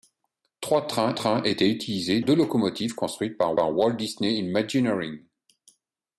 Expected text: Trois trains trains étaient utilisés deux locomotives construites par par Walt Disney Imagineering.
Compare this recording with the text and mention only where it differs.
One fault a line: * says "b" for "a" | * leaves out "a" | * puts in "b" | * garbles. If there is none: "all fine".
all fine